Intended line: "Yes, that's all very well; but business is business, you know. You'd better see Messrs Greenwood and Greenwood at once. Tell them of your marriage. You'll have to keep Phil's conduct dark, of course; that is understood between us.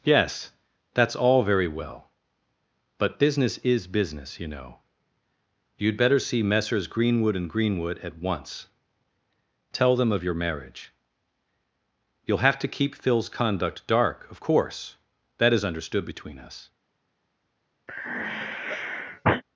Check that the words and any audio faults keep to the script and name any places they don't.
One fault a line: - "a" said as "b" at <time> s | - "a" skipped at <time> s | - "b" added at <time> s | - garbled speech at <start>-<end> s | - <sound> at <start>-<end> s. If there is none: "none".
- sigh at 17.9-19.4 s